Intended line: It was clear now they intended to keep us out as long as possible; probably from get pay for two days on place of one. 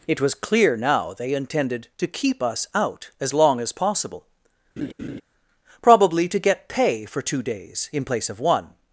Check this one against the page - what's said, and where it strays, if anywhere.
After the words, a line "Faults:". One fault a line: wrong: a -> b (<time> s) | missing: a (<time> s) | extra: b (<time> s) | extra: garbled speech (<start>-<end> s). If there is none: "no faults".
It was clear now they intended to keep us out as long as possible; probably to get pay for two days in place of one.
Faults:
wrong: from -> to (6.3 s)
wrong: on -> in (7.9 s)